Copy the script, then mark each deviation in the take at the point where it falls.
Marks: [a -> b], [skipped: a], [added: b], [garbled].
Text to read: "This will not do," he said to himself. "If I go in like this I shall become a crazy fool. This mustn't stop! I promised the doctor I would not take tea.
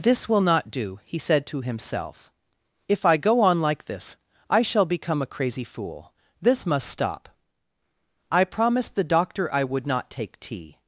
"This will not do," he said to himself. "If I go [in -> on] like this I shall become a crazy fool. This [mustn't -> must] stop! I promised the doctor I would not take tea.